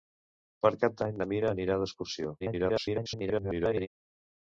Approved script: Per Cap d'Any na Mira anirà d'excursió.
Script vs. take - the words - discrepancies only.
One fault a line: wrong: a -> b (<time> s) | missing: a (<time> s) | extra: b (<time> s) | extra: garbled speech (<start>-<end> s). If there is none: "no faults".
extra: garbled speech (2.4-3.9 s)